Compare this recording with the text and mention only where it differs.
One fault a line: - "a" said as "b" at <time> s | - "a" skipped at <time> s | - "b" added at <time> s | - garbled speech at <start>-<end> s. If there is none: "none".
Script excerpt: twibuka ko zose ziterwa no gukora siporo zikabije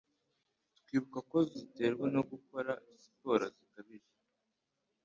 - "zose" skipped at 1.4 s